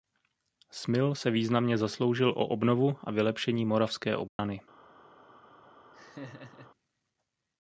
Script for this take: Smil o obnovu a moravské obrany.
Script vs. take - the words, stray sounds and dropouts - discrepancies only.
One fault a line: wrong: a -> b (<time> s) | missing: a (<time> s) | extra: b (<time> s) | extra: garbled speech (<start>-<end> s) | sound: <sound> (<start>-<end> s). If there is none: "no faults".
extra: se významně zasloužil (1.1 s)
extra: vylepšení (3.1 s)
sound: dropout (4.3-4.4 s)
sound: laugh (5.9-6.7 s)